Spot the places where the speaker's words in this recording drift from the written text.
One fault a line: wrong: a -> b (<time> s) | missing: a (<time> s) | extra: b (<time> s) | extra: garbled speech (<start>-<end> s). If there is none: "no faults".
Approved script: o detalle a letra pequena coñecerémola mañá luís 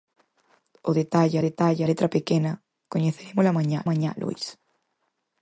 extra: detalle (1.5 s)
extra: mañá (3.9 s)